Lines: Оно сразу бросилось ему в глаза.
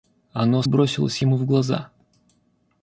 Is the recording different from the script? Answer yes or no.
yes